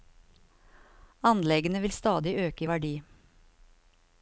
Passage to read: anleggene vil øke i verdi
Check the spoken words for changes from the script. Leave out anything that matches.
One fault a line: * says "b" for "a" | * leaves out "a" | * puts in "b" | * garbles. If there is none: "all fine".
* puts in "stadig"